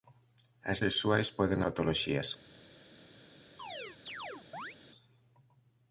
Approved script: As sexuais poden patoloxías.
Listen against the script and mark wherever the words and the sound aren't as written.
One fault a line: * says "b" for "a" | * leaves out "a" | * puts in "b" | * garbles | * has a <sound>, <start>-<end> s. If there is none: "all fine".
* has a chirp, 3.6-4.8 s